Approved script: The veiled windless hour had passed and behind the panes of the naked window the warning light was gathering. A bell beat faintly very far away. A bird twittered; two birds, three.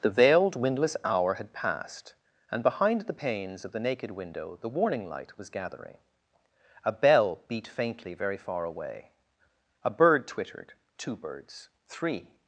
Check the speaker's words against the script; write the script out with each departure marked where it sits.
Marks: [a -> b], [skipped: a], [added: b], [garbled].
The veiled windless hour had passed and behind the panes of the naked window the warning light was gathering. A bell beat faintly very far away. A bird twittered; two birds, three.